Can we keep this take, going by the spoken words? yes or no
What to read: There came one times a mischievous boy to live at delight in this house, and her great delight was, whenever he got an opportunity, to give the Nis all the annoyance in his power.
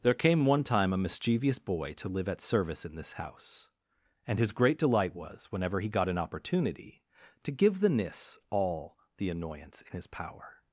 no